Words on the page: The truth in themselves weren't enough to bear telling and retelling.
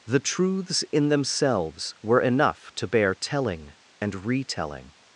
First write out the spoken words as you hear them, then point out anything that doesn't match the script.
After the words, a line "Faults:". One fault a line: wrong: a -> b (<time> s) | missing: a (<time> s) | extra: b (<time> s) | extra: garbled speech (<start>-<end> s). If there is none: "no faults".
The truths in themselves were enough to bear telling and retelling.
Faults:
wrong: truth -> truths (0.2 s)
wrong: weren't -> were (2.0 s)